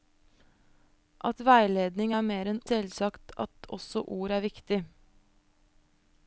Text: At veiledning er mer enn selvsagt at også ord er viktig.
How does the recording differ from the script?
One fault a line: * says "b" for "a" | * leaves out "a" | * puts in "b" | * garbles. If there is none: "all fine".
all fine